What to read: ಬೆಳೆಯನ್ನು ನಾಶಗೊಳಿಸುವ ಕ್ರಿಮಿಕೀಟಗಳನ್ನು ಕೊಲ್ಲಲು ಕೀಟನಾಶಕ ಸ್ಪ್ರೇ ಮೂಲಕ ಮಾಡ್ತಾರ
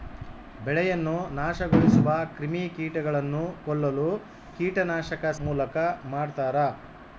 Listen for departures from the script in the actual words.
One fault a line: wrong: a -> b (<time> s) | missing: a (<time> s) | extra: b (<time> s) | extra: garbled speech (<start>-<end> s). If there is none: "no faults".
missing: ಸ್ಪ್ರೇ (5.2 s)